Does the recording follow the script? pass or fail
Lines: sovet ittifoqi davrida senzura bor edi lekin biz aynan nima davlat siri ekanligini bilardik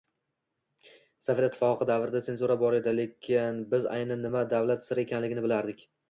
pass